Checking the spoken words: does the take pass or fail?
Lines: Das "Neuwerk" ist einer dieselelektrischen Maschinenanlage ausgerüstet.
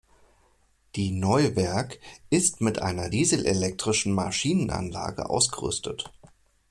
fail